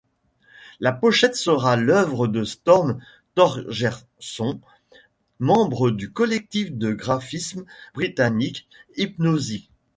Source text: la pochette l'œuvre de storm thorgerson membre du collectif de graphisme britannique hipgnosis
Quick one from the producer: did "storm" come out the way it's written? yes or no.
yes